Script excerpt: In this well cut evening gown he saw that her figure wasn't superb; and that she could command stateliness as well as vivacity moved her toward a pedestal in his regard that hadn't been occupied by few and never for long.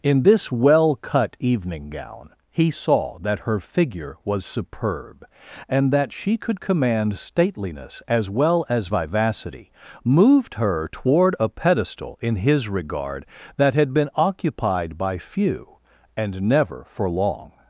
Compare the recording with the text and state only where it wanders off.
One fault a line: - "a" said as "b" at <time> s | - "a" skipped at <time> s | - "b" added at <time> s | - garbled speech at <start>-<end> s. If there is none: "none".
- "wasn't" said as "was" at 4.2 s
- "hadn't" said as "had" at 13.7 s